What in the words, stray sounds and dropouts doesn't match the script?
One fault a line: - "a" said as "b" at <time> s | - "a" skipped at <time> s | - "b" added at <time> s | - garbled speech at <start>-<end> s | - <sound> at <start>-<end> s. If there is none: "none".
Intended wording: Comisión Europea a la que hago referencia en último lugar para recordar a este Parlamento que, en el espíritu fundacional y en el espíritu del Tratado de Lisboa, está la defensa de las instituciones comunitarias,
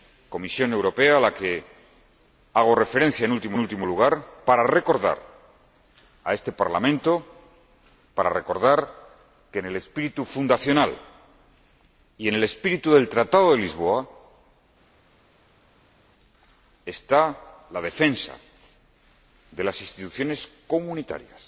- "último" added at 3.6 s